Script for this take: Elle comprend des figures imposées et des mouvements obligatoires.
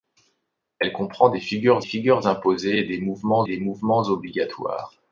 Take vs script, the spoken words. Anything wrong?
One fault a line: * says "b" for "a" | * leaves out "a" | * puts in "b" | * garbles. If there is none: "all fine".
* puts in "figures"
* puts in "des mouvements"